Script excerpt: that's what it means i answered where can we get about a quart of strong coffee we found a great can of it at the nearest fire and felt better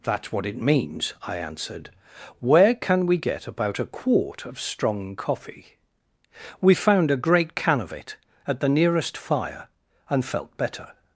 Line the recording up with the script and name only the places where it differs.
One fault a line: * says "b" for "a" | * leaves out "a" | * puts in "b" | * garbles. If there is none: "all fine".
all fine